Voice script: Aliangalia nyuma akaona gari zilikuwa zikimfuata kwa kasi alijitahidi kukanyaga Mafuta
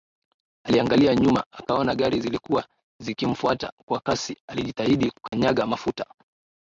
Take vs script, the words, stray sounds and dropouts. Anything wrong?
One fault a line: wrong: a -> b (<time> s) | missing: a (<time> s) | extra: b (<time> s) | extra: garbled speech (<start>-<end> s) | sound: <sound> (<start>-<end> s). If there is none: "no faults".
sound: dropout (5.3-5.3 s)